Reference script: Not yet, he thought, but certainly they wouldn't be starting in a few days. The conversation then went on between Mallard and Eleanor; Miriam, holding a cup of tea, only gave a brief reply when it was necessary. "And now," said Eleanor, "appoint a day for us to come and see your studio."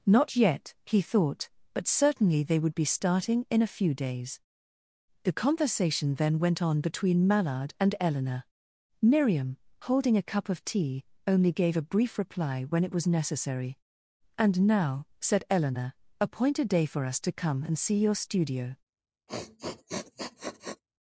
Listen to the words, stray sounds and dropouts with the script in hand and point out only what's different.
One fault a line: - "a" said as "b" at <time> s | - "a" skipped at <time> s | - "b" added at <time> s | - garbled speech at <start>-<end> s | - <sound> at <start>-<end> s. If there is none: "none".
- "wouldn't" said as "would" at 2.6 s
- sniff at 19.3-20.8 s